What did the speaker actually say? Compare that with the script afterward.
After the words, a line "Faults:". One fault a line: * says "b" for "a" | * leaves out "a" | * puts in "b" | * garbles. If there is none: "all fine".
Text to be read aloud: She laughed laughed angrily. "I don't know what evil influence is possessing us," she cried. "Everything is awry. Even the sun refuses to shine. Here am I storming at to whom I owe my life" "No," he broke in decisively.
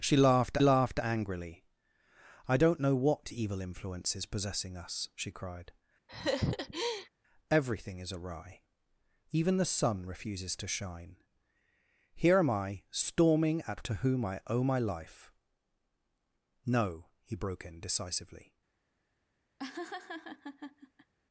She laughed laughed angrily. "I don't know what evil influence is possessing us," she cried. "Everything is awry. Even the sun refuses to shine. Here am I storming at to whom I owe my life" "No," he broke in decisively.
Faults:
all fine